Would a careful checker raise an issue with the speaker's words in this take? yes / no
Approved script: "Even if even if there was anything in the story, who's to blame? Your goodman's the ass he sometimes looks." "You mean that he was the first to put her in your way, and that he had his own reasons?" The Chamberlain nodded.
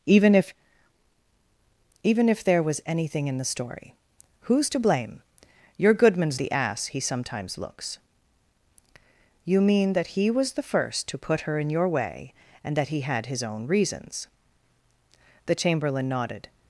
no